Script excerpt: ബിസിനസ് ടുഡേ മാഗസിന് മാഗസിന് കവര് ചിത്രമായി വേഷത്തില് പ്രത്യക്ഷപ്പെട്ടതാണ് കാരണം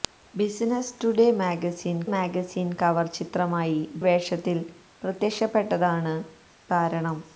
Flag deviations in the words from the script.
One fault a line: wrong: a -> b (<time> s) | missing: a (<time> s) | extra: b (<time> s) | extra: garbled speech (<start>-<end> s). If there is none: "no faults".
no faults